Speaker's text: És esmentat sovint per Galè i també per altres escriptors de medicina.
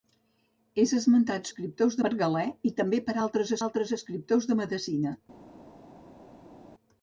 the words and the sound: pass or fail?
fail